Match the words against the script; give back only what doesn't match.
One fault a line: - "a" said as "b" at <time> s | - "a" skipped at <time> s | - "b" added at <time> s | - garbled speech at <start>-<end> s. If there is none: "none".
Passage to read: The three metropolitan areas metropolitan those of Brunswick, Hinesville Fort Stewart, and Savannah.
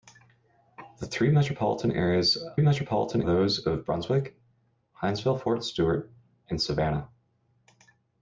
none